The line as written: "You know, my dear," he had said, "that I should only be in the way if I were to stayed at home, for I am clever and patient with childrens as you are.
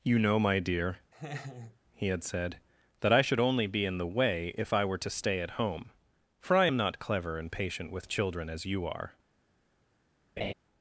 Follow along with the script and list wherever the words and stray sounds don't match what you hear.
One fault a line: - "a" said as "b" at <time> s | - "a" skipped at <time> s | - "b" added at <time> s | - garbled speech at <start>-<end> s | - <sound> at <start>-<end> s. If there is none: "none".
- laugh at 1.1-1.8 s
- "stayed" said as "stay" at 5.1 s
- "not" added at 6.8 s
- "childrens" said as "children" at 8.1 s
- laugh at 10.4-10.5 s